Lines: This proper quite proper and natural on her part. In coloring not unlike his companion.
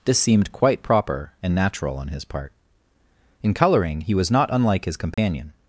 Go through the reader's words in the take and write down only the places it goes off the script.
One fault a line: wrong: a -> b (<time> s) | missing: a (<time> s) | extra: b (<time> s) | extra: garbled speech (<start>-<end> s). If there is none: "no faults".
wrong: proper -> seemed (0.2 s)
wrong: her -> his (2.1 s)
extra: he was (4.0 s)